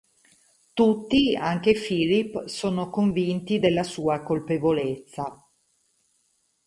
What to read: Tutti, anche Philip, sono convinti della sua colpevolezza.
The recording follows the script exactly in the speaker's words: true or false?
true